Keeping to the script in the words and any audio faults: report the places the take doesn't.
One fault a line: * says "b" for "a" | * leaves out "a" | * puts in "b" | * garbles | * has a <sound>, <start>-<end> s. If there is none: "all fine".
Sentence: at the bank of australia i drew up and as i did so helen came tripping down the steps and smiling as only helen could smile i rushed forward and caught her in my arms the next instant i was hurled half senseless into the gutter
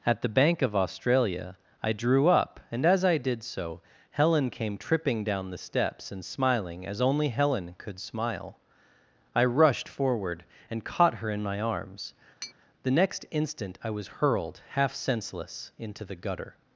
* has a tap, 12.4-12.5 s